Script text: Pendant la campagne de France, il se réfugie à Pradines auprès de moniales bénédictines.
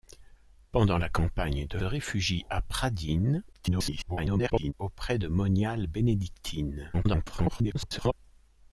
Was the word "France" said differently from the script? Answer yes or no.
yes